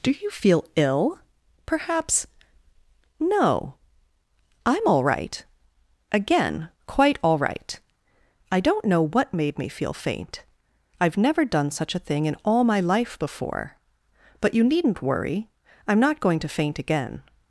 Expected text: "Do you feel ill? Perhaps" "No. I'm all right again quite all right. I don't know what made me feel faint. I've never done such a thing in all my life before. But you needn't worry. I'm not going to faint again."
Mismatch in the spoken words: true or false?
false